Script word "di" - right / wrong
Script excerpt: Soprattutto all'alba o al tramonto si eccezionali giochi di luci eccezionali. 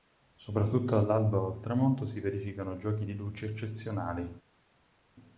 right